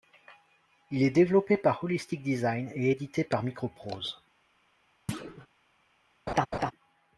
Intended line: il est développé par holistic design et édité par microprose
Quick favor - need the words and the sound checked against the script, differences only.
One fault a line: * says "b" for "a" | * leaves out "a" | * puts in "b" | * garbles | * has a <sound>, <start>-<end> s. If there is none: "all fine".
* has a thud, 5.1-5.5 s
* has a laugh, 6.3-6.7 s